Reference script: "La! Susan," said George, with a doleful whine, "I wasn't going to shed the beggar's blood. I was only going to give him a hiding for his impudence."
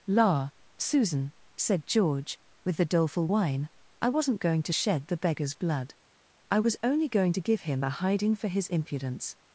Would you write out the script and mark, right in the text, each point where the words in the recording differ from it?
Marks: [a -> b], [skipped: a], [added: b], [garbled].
"La! Susan," said George, with [a -> the] doleful whine, "I wasn't going to shed the beggar's blood. I was only going to give him a hiding for his impudence."